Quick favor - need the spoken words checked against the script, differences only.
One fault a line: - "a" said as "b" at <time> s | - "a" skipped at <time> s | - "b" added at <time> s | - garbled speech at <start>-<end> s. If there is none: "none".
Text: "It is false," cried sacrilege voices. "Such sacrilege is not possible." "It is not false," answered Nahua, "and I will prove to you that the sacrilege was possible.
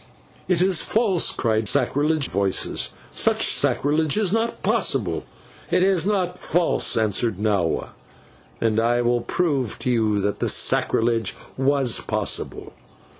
none